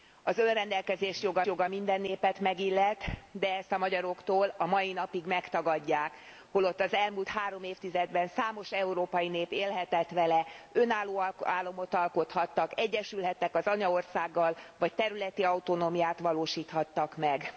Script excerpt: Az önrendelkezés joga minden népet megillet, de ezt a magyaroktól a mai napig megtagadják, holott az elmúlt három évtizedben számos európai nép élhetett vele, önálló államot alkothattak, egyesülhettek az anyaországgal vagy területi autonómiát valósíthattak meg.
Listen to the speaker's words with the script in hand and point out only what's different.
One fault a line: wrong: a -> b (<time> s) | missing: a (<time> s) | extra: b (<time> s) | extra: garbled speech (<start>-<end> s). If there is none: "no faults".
extra: joga (1.4 s)